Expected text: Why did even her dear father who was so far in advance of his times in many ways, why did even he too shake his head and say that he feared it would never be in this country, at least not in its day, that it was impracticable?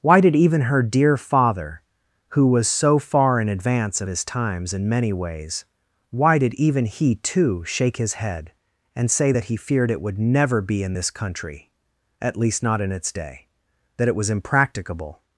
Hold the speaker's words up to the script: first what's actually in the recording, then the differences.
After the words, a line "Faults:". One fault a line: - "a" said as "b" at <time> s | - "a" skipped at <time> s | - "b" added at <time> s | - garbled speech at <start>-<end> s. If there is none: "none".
Why did even her dear father who was so far in advance of his times in many ways, why did even he too shake his head and say that he feared it would never be in this country, at least not in its day, that it was impracticable?
Faults:
none